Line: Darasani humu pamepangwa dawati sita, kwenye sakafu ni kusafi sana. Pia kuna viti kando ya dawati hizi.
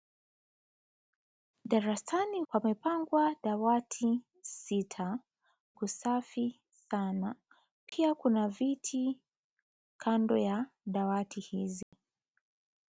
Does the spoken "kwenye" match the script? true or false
false